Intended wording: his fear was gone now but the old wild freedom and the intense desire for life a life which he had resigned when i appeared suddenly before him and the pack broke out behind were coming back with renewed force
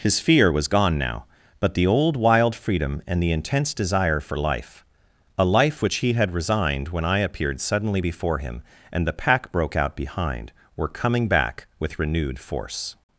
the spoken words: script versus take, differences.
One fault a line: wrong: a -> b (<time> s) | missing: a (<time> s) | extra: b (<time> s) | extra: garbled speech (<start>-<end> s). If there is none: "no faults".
no faults